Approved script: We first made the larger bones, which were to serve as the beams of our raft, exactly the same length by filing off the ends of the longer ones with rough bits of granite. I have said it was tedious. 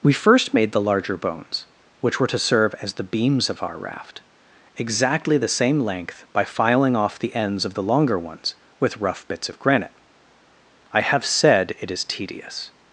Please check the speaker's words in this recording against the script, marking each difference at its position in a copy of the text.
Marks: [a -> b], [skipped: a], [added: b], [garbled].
We first made the larger bones, which were to serve as the beams of our raft, exactly the same length by filing off the ends of the longer ones with rough bits of granite. I have said it [was -> is] tedious.